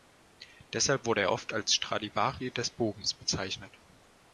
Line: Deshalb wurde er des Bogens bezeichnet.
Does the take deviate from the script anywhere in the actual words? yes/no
yes